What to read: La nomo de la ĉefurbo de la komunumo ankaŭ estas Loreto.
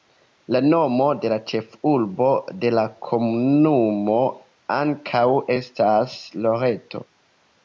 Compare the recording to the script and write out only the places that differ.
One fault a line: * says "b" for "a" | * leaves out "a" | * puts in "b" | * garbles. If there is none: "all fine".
all fine